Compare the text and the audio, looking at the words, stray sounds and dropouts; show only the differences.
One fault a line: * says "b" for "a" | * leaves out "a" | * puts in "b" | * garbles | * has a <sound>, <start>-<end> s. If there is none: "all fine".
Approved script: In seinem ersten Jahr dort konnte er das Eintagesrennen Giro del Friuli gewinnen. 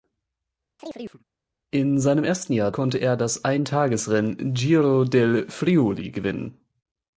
* has a chirp, 0.8-1.2 s
* leaves out "dort"